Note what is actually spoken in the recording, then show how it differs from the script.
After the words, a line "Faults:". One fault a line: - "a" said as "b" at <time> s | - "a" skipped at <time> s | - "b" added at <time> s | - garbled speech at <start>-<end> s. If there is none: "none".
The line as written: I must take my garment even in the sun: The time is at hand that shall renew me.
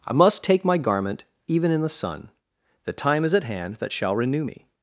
I must take my garment even in the sun: The time is at hand that shall renew me.
Faults:
none